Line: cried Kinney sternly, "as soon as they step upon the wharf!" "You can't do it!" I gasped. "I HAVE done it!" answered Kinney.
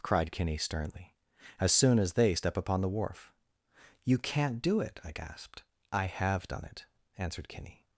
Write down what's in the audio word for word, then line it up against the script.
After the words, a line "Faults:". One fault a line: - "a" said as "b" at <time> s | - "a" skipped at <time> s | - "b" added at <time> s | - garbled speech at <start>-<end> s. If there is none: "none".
cried Kinney sternly, "as soon as they step upon the wharf!" "You can't do it!" I gasped. "I HAVE done it!" answered Kinney.
Faults:
none